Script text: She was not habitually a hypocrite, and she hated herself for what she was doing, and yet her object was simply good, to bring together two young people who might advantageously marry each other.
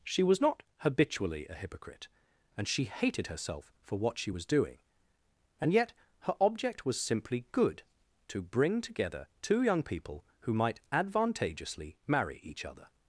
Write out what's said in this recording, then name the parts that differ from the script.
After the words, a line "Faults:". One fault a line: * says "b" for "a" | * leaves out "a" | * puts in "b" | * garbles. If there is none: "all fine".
She was not habitually a hypocrite, and she hated herself for what she was doing, and yet her object was simply good, to bring together two young people who might advantageously marry each other.
Faults:
all fine